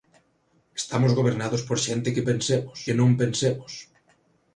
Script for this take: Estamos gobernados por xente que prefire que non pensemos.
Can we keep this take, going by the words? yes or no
no